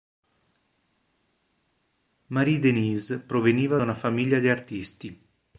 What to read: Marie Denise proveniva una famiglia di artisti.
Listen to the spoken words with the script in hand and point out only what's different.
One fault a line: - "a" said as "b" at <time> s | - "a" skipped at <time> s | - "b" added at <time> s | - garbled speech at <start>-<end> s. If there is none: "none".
none